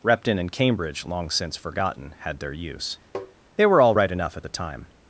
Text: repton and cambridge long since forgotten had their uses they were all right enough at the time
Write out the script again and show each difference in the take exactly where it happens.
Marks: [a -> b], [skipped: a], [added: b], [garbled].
repton and cambridge long since forgotten had their [uses -> use] they were all right enough at the time